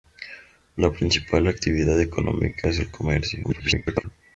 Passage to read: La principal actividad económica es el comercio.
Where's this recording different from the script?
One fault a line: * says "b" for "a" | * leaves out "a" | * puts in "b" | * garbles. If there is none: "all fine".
* garbles